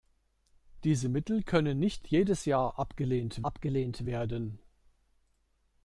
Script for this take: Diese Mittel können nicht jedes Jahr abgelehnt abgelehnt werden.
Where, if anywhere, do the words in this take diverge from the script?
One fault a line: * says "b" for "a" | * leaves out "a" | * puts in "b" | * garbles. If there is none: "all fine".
all fine